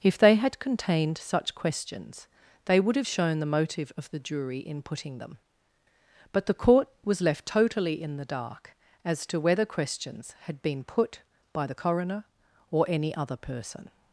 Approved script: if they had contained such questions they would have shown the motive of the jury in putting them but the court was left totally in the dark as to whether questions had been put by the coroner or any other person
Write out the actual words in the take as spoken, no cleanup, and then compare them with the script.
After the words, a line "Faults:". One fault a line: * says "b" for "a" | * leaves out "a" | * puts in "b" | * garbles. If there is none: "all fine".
if they had contained such questions they would have shown the motive of the jury in putting them but the court was left totally in the dark as to whether questions had been put by the coroner or any other person
Faults:
all fine